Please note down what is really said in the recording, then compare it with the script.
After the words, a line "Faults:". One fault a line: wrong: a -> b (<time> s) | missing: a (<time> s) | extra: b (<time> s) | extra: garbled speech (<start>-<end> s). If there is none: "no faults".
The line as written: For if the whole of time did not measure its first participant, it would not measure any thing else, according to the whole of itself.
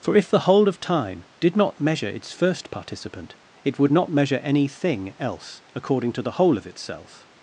For if the whole of time did not measure its first participant, it would not measure any thing else, according to the whole of itself.
Faults:
no faults